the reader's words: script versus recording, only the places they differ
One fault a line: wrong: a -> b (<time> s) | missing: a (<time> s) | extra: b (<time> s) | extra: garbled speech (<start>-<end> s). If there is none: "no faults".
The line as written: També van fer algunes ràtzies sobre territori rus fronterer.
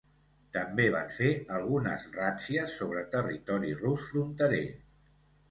no faults